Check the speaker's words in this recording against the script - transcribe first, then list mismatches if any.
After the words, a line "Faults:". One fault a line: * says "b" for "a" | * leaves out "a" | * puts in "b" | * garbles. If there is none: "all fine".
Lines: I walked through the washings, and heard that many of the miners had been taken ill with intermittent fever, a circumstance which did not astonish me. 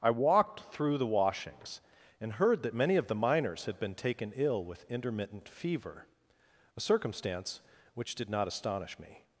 I walked through the washings, and heard that many of the miners had been taken ill with intermittent fever, a circumstance which did not astonish me.
Faults:
all fine